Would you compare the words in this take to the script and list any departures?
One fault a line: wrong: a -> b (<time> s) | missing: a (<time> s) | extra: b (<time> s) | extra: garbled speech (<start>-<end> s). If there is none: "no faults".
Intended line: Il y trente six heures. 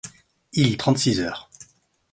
no faults